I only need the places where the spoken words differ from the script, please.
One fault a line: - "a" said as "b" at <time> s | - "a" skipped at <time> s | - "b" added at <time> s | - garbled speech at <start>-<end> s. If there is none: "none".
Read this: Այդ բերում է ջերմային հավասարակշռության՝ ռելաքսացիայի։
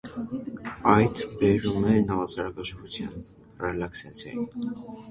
- "ջերմային" skipped at 1.9 s